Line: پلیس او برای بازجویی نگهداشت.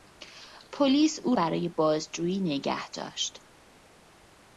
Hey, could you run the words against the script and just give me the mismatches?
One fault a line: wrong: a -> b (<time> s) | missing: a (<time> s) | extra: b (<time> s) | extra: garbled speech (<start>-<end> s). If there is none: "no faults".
no faults